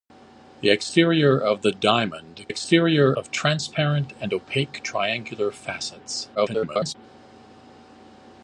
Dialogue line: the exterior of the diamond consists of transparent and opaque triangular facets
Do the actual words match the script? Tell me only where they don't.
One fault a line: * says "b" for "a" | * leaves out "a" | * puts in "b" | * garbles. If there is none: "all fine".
* says "exterior" for "consists"
* garbles